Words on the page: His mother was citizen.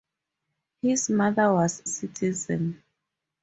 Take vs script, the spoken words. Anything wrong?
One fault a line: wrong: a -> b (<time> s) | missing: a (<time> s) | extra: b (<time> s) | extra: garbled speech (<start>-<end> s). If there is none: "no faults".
no faults